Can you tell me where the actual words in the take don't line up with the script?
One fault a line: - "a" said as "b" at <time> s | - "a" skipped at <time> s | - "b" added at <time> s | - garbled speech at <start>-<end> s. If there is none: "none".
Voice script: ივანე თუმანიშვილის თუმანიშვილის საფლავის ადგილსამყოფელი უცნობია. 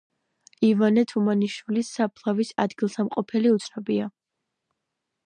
- "თუმანიშვილის" skipped at 1.9 s